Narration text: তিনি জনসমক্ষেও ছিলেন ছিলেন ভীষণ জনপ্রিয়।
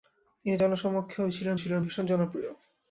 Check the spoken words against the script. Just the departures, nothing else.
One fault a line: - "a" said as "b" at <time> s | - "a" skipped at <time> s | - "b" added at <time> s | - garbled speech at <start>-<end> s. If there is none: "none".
none